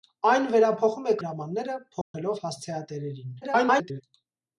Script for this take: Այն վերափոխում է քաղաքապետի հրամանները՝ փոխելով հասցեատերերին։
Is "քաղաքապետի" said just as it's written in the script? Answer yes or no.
no